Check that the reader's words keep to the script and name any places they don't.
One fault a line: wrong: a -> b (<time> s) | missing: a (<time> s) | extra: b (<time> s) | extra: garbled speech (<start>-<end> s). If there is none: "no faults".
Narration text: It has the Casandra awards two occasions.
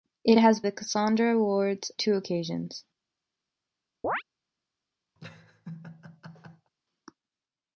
no faults